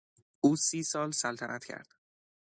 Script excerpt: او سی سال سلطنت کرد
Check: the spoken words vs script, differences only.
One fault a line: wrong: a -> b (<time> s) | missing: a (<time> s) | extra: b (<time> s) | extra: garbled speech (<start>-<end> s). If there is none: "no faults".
no faults